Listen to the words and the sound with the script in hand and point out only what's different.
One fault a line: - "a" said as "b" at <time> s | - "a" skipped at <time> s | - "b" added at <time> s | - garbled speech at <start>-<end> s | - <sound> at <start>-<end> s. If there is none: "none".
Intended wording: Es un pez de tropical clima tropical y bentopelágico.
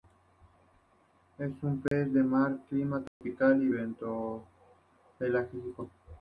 - dropout at 1.9-1.9 s
- "tropical" said as "mar" at 2.2 s
- dropout at 3.1-3.2 s